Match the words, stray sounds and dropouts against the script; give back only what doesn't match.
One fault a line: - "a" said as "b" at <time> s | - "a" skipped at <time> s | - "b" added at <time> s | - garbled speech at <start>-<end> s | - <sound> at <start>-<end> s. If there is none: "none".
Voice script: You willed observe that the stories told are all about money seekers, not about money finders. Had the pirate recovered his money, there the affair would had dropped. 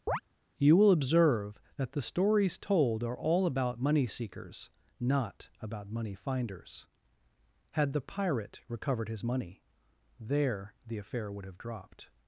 - chirp at 0.1-0.2 s
- "willed" said as "will" at 0.7 s
- "had" said as "have" at 11.5 s